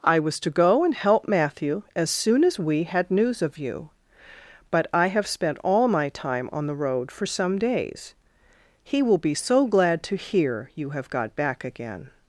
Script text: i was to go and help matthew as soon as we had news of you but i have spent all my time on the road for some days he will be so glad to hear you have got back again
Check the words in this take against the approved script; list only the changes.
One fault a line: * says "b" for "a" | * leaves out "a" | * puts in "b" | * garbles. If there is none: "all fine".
all fine